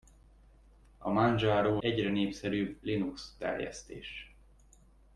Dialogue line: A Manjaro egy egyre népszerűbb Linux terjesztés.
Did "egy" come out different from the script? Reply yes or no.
yes